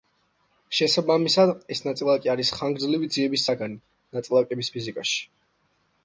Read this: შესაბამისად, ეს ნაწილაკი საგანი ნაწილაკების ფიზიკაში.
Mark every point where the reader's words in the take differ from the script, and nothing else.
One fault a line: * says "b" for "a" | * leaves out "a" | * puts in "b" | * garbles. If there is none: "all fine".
* puts in "არის ხანგრძლივი ძიების"